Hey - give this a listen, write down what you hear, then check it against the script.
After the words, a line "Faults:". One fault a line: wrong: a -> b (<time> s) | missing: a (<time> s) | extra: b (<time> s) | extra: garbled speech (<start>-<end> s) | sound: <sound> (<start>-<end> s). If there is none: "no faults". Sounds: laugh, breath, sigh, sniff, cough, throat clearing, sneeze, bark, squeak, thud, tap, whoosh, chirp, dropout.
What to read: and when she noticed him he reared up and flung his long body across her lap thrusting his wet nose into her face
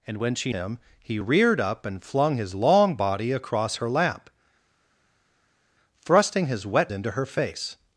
and when she him he reared up and flung his long body across her lap thrusting his wet into her face
Faults:
missing: noticed (0.5 s)
missing: nose (6.9 s)